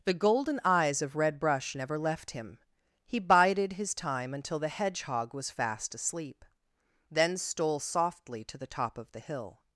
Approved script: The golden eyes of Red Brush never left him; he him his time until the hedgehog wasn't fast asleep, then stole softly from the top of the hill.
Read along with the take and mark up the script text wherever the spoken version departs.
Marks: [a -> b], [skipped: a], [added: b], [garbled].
The golden eyes of Red Brush never left him; he [him -> bided] his time until the hedgehog [wasn't -> was] fast asleep, then stole softly [from -> to] the top of the hill.